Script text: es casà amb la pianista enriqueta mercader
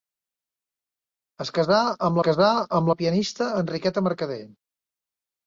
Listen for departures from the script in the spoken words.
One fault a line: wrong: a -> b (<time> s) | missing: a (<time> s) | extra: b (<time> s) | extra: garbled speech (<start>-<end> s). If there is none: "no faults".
extra: casà amb (2.3 s)